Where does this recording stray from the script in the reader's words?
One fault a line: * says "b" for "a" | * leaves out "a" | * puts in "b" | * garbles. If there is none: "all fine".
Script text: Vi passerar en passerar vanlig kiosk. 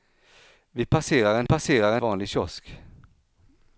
all fine